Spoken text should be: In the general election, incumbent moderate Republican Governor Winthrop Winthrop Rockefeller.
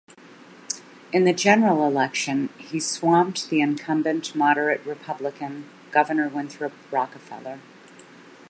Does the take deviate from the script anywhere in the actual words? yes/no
yes